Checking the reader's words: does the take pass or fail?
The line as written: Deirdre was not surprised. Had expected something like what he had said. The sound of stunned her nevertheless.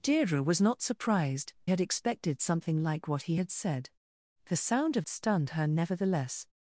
pass